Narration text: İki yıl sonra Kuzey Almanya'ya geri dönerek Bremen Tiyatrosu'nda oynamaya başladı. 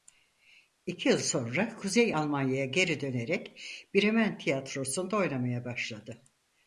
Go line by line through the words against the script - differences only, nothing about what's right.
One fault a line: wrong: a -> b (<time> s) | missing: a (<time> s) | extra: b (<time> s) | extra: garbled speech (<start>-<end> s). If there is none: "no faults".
no faults